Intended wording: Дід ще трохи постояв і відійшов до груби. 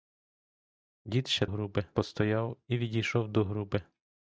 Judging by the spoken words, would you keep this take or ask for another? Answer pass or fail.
fail